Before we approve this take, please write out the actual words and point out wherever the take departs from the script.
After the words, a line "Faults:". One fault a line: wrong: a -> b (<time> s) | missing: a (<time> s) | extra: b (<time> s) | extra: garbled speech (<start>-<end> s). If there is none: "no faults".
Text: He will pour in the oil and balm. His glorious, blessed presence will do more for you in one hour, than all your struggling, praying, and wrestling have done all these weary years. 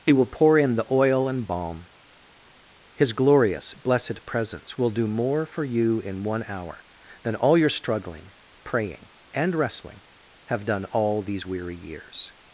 He will pour in the oil and balm. His glorious, blessed presence will do more for you in one hour, than all your struggling, praying, and wrestling have done all these weary years.
Faults:
no faults